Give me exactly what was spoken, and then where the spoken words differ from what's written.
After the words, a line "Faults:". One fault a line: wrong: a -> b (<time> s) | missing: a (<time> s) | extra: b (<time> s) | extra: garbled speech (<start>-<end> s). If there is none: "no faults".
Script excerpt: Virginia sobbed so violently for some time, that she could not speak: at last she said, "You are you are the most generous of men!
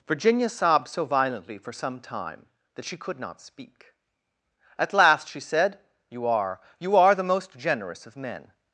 Virginia sobbed so violently for some time, that she could not speak: at last she said, "You are you are the most generous of men!
Faults:
no faults